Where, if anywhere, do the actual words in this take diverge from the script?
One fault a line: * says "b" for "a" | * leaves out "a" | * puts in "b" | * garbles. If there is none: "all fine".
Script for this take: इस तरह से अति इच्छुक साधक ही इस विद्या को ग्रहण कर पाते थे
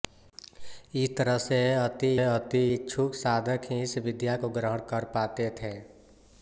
* puts in "अति"